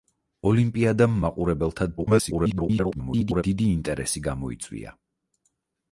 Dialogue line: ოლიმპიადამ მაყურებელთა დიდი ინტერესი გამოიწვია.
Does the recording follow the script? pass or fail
fail